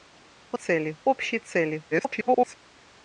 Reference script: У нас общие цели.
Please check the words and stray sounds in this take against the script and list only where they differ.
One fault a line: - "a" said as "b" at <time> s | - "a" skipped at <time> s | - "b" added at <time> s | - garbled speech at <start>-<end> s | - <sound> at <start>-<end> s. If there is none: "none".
- "нас" said as "цели" at 0.5 s
- garbled speech at 1.9-2.6 s